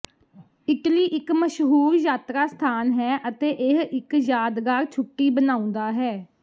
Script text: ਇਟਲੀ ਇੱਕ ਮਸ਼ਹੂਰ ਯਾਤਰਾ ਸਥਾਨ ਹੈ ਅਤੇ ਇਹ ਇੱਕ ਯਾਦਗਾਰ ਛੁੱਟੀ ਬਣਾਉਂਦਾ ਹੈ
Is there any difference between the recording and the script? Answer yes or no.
no